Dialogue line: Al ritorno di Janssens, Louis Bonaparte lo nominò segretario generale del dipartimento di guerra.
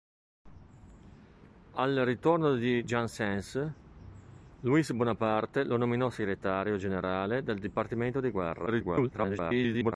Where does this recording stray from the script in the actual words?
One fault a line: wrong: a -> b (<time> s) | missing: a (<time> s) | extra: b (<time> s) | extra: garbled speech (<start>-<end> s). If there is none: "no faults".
extra: garbled speech (8.7-9.9 s)